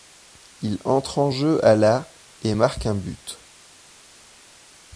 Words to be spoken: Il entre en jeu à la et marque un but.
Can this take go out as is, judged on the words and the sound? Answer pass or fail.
pass